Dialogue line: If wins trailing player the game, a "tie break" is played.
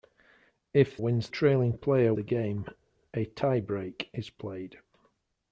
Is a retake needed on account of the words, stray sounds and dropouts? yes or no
no